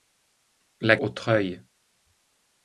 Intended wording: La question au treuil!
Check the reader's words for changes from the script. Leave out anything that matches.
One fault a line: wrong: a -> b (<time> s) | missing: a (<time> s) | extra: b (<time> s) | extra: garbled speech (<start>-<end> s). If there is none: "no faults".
missing: question (1.0 s)